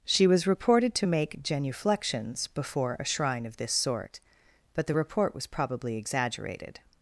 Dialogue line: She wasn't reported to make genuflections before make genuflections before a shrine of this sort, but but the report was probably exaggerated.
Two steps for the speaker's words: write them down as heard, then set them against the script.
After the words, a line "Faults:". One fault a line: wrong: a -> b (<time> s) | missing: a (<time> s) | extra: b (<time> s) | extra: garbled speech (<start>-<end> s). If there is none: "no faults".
She was reported to make genuflections before a shrine of this sort, but the report was probably exaggerated.
Faults:
wrong: wasn't -> was (0.2 s)
missing: make genuflections before (3.0 s)
missing: but (4.9 s)